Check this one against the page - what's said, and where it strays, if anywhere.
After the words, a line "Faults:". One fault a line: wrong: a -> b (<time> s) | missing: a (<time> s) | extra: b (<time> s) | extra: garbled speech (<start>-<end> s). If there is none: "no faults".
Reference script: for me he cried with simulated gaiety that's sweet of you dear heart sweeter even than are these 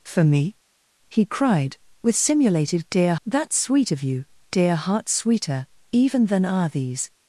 for me he cried with simulated dear that's sweet of you dear heart sweeter even than are these
Faults:
wrong: gaiety -> dear (2.9 s)